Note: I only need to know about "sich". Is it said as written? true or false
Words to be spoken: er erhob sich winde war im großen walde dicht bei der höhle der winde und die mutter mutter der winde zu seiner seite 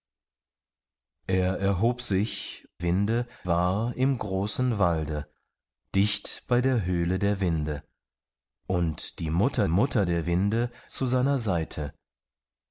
true